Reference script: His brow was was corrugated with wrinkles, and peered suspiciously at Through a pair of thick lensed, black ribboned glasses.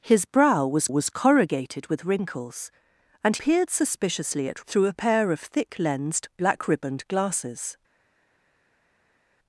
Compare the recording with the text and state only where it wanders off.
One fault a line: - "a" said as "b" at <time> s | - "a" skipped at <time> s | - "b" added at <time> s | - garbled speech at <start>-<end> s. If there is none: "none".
none